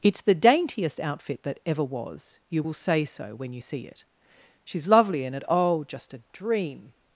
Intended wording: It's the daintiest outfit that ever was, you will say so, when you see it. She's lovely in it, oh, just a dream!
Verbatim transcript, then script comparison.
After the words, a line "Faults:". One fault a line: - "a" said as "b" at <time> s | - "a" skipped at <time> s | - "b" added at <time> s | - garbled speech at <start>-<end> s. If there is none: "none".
It's the daintiest outfit that ever was, you will say so, when you see it. She's lovely in it, oh, just a dream!
Faults:
none